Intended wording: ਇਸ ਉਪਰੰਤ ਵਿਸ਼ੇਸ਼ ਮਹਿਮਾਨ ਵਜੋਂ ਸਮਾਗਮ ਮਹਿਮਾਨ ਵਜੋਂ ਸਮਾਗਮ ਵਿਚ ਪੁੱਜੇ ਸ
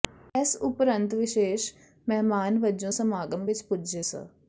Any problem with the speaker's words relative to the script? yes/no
yes